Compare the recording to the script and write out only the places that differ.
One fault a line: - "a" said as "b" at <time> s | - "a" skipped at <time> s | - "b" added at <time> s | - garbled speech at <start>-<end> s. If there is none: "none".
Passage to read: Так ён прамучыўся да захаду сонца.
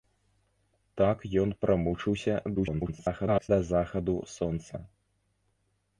- garbled speech at 2.6-3.5 s